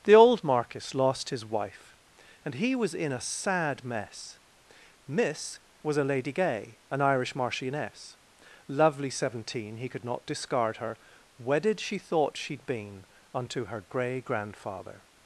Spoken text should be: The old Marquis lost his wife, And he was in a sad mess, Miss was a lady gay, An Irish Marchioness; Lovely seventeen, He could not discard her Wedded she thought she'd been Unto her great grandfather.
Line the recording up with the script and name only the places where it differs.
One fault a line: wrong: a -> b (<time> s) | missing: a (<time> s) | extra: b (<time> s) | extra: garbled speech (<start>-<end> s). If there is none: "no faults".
wrong: great -> grey (13.9 s)